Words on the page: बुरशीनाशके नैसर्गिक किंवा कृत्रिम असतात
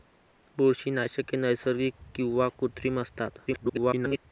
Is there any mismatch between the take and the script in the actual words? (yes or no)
yes